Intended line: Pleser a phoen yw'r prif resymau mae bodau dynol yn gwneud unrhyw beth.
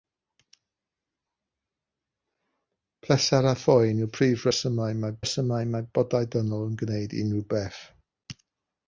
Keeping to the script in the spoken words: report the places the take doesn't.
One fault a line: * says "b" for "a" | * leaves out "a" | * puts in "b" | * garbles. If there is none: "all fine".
* puts in "resymau mae"